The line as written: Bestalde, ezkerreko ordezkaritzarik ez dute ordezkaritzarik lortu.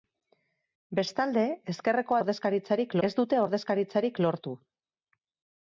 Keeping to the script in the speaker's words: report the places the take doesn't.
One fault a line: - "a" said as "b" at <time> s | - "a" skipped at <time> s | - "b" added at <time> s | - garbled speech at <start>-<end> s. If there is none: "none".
none